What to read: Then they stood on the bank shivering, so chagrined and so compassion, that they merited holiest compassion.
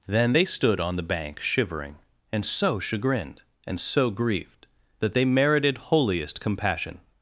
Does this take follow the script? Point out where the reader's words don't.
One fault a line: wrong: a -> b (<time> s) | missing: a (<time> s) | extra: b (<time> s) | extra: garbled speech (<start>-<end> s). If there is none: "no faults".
extra: and (2.3 s)
wrong: compassion -> grieved (4.1 s)